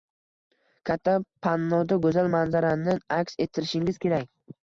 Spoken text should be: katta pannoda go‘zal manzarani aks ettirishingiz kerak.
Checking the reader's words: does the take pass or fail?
pass